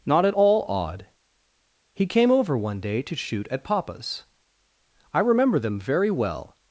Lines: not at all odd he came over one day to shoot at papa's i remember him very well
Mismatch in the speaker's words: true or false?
true